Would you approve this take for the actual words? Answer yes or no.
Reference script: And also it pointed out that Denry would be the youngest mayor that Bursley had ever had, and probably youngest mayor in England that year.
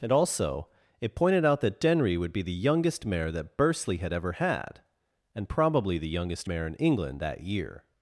no